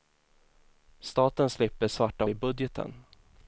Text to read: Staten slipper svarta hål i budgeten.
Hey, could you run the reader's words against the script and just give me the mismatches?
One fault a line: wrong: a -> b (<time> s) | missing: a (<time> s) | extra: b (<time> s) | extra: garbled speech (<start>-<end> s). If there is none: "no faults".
missing: hål (2.2 s)